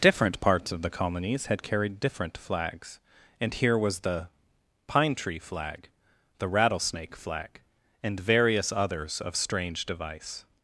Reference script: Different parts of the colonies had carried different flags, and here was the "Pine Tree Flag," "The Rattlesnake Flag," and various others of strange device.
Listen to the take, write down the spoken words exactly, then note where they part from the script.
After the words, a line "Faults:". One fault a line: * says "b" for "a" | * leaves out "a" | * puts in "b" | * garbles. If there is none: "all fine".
Different parts of the colonies had carried different flags, and here was the "Pine Tree Flag," "The Rattlesnake Flag," and various others of strange device.
Faults:
all fine